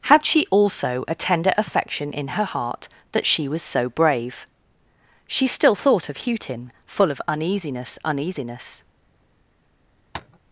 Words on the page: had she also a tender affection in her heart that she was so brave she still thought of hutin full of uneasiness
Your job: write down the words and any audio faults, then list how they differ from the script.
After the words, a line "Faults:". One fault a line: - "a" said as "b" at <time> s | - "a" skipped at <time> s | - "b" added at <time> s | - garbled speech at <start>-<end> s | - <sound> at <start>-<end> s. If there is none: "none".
had she also a tender affection in her heart that she was so brave she still thought of hutin full of uneasiness uneasiness
Faults:
- "uneasiness" added at 8.0 s
- tap at 10.1-10.4 s